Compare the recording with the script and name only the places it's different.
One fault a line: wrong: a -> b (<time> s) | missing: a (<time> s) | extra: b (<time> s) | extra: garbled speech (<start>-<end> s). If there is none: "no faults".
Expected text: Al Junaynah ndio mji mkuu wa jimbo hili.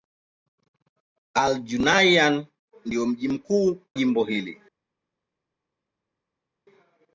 missing: wa (3.8 s)